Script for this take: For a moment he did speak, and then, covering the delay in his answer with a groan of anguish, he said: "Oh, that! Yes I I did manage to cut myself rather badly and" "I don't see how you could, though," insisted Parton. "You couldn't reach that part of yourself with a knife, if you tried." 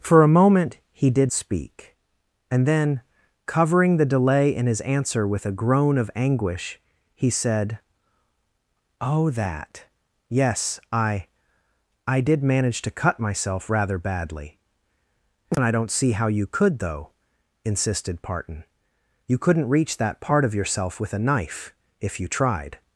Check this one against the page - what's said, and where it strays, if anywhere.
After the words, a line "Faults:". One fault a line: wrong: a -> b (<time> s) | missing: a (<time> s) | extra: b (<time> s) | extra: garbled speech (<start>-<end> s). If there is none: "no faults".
For a moment he did speak, and then, covering the delay in his answer with a groan of anguish, he said: "Oh, that! Yes I I did manage to cut myself rather badly and" "I don't see how you could, though," insisted Parton. "You couldn't reach that part of yourself with a knife, if you tried."
Faults:
no faults